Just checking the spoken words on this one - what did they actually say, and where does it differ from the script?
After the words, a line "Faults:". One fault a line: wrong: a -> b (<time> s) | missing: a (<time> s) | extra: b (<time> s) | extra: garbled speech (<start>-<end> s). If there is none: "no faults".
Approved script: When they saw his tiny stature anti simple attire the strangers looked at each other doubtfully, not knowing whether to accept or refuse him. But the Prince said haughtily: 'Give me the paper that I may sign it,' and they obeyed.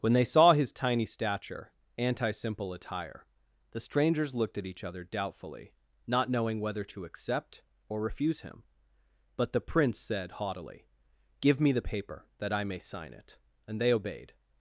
When they saw his tiny stature anti simple attire the strangers looked at each other doubtfully, not knowing whether to accept or refuse him. But the Prince said haughtily: 'Give me the paper that I may sign it,' and they obeyed.
Faults:
no faults